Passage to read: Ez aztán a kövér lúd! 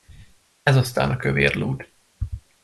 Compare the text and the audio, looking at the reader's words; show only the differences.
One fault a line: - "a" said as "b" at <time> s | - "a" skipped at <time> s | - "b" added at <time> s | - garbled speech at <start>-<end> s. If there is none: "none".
none